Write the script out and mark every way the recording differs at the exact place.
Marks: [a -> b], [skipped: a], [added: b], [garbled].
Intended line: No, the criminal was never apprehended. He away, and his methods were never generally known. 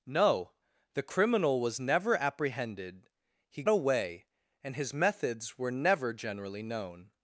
No, the criminal was never apprehended. He away, and his methods were never generally known.